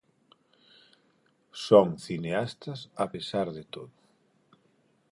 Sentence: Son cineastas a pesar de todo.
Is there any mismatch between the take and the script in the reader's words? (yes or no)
no